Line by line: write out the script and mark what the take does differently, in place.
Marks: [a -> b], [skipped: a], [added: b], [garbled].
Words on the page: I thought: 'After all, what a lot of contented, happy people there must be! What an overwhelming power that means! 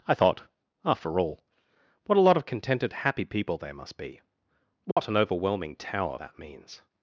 I thought: 'After all, what a lot of contented, happy people there must be! What an overwhelming [power -> tower] that means!